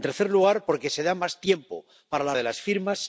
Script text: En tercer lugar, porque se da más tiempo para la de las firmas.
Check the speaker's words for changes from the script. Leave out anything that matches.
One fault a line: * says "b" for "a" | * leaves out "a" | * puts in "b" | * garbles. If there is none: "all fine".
all fine